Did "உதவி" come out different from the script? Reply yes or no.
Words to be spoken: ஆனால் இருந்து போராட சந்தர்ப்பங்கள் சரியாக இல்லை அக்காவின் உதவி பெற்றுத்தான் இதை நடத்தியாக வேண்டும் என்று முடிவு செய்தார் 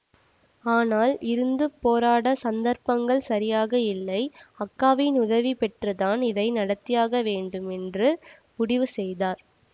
no